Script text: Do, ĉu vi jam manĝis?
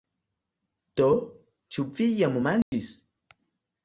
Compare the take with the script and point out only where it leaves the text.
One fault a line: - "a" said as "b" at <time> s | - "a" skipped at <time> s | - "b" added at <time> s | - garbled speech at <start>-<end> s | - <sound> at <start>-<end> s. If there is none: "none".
- dropout at 2.6-2.7 s